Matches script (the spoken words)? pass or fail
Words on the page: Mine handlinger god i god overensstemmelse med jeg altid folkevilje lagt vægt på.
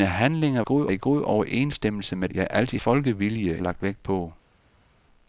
pass